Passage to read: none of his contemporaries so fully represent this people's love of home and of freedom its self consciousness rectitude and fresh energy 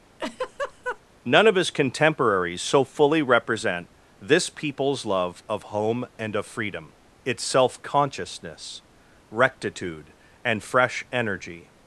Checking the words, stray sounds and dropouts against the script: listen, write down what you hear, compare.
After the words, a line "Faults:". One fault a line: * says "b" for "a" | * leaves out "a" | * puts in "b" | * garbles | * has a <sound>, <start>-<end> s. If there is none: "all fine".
none of his contemporaries so fully represent this people's love of home and of freedom its self consciousness rectitude and fresh energy
Faults:
* has a laugh, 0.2-1.0 s